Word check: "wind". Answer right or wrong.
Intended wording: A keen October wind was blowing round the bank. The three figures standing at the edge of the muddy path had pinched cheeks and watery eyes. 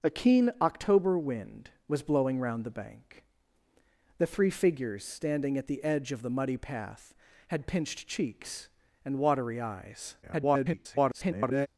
right